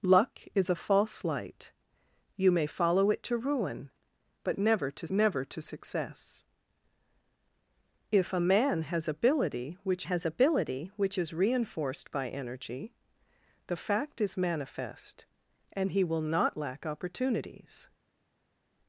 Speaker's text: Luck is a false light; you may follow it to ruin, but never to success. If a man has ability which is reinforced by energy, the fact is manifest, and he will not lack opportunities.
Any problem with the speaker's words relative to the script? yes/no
yes